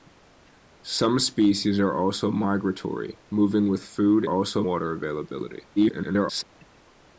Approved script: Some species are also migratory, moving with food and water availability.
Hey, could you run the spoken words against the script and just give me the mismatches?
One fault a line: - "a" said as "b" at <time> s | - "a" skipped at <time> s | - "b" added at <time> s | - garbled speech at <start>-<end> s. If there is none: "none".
- "and" said as "also" at 4.3 s
- garbled speech at 5.8-6.4 s